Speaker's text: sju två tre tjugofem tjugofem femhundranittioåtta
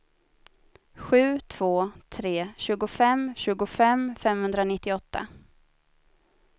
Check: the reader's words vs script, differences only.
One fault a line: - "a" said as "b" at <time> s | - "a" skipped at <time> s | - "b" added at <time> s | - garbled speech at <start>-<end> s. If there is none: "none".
none